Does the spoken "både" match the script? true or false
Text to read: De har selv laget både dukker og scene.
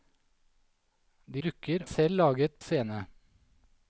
false